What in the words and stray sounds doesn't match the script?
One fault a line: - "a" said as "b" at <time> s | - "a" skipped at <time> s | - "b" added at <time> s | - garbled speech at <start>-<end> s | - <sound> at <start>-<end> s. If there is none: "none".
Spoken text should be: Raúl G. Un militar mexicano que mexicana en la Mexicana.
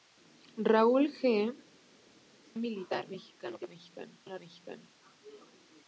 none